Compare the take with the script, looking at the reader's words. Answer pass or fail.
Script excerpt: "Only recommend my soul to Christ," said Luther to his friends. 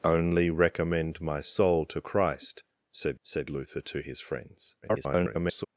fail